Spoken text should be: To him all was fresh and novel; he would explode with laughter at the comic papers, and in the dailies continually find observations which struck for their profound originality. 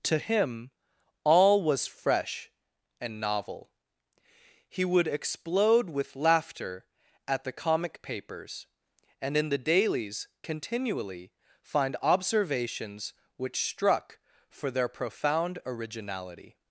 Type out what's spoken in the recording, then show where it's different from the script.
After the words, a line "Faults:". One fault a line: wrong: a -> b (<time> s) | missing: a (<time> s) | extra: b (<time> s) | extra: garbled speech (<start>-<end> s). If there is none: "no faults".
To him all was fresh and novel; he would explode with laughter at the comic papers, and in the dailies continually find observations which struck for their profound originality.
Faults:
no faults